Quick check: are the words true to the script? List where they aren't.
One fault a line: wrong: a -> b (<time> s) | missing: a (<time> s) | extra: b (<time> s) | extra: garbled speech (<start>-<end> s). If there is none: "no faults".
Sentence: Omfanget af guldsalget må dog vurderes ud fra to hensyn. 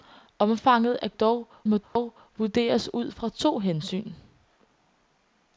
wrong: guldsalget -> dog (1.1 s)